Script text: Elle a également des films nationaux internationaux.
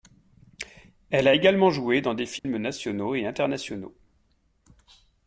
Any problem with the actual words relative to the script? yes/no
yes